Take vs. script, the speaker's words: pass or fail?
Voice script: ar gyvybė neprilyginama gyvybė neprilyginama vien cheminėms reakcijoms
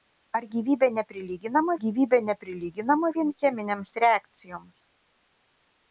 pass